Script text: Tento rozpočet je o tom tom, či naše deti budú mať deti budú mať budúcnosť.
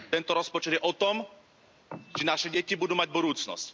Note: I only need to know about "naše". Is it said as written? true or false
true